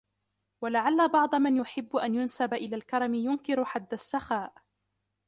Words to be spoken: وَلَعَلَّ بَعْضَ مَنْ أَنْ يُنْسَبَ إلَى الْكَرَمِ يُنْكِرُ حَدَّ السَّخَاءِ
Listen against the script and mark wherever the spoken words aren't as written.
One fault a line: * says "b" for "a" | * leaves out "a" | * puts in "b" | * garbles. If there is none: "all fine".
* puts in "يُحِبُّ"